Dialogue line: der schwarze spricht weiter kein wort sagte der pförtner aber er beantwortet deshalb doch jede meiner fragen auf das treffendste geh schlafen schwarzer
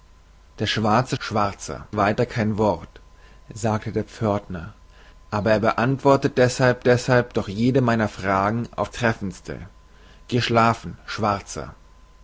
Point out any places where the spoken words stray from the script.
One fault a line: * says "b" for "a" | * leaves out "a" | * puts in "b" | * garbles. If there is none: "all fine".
* says "schwarzer" for "spricht"
* puts in "deshalb"
* leaves out "das"